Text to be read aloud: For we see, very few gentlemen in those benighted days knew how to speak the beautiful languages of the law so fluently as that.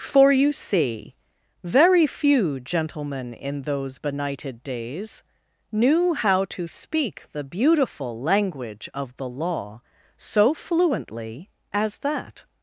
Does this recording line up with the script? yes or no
no